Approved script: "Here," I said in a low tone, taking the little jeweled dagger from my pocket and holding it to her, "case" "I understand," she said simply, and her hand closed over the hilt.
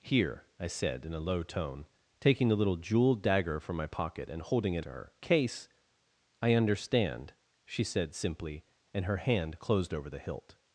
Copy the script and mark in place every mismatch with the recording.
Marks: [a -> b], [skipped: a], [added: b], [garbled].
"Here," I said in a low tone, taking the little jeweled dagger from my pocket and holding it to her, "case" "I understand," she said simply, and her hand closed over the hilt.